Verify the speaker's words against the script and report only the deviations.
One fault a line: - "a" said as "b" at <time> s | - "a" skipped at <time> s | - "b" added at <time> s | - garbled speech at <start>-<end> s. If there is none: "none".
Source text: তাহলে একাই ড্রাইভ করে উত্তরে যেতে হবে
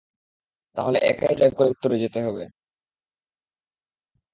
none